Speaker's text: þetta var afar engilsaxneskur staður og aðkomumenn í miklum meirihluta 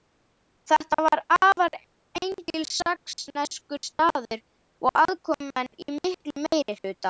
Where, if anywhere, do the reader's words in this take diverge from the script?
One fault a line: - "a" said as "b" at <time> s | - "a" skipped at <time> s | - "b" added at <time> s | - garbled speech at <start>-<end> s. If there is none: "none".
none